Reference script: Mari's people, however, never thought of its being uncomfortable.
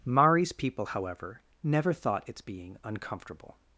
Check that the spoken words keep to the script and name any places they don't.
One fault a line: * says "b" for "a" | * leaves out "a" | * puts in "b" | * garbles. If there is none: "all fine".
* leaves out "of"